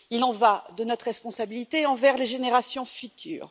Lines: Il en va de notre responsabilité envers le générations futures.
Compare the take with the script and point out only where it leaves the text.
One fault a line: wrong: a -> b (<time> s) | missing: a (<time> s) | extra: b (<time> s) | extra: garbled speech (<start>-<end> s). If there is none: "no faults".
wrong: le -> les (2.2 s)